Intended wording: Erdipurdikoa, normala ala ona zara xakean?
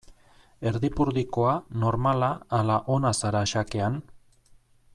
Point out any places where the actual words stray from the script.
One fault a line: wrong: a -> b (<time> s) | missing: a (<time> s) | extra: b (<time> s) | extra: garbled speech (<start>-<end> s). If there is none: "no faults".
no faults